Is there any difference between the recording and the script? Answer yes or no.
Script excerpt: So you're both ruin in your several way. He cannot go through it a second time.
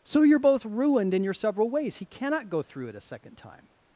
yes